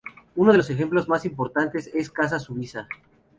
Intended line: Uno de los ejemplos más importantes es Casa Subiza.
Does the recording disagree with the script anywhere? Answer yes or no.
no